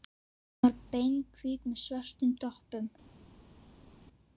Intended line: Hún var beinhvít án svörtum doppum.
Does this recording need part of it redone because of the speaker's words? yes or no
yes